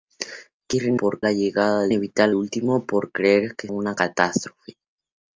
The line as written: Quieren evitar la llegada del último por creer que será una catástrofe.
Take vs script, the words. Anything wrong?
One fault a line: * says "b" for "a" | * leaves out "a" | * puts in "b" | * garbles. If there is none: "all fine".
* says "por" for "evitar"
* says "evitar" for "del"
* leaves out "será"